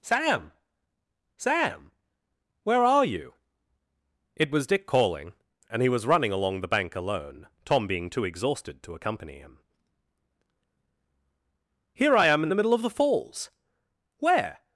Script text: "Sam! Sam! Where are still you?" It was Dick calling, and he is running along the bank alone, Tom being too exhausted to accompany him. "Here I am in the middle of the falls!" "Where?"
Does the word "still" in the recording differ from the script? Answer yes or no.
yes